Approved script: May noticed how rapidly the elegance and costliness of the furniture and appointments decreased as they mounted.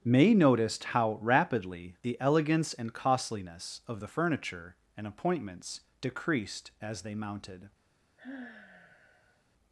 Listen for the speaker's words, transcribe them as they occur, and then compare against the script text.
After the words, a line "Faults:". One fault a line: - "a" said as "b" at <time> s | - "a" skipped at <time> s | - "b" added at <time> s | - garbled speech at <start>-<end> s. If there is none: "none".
May noticed how rapidly the elegance and costliness of the furniture and appointments decreased as they mounted.
Faults:
none